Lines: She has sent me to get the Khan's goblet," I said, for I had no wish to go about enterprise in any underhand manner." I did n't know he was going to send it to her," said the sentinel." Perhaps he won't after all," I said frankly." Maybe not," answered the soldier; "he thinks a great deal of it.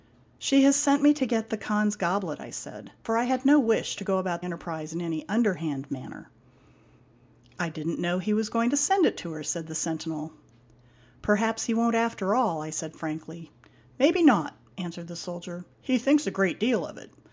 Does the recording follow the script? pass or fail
pass